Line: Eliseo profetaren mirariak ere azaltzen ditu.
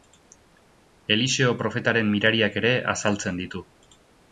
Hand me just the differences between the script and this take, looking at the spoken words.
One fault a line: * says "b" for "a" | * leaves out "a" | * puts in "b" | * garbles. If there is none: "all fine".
all fine